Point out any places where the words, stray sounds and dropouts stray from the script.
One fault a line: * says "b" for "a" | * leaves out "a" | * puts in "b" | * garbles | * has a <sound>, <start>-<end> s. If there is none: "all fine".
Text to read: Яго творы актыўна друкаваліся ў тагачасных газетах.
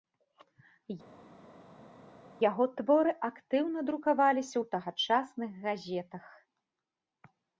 all fine